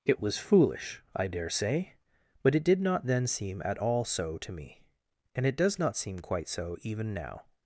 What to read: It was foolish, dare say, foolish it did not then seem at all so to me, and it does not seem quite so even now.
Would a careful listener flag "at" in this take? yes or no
no